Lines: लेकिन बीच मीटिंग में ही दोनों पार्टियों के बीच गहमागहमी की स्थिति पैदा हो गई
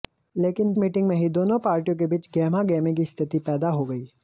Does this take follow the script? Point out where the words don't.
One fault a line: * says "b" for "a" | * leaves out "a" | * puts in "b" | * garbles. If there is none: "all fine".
* leaves out "बीच"